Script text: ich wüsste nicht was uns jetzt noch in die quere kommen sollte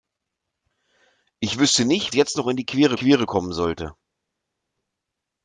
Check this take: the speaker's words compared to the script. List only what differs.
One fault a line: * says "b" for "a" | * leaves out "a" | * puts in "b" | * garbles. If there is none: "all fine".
* leaves out "was uns"
* puts in "quere"